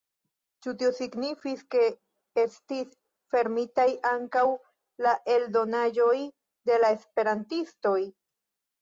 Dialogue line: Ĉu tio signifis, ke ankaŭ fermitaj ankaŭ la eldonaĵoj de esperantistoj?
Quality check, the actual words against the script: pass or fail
fail